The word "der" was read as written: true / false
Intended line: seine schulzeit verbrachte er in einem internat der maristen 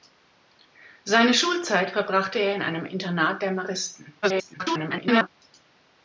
true